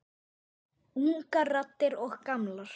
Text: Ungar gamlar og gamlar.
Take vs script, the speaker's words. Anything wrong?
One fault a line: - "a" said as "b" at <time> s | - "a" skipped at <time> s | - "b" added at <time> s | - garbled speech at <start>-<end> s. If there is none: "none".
- "gamlar" said as "raddir" at 1.5 s